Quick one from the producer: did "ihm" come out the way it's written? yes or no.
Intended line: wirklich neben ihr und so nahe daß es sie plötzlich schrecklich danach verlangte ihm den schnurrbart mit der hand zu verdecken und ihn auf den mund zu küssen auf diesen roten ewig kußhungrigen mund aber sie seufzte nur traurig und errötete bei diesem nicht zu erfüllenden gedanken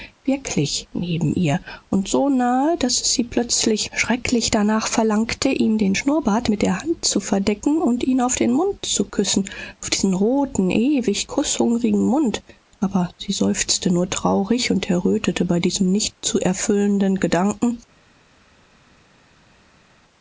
yes